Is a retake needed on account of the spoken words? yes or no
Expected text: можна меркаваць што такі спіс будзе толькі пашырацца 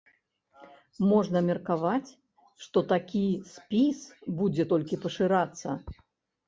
no